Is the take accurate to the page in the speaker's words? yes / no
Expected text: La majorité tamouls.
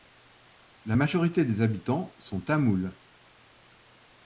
no